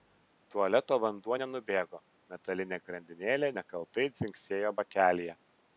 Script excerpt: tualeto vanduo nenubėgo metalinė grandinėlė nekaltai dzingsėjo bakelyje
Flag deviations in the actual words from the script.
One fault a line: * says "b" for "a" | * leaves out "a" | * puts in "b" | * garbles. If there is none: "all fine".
all fine